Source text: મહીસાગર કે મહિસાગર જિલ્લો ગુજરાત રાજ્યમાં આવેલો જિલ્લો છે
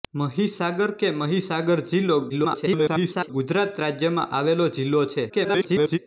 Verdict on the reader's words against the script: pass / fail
fail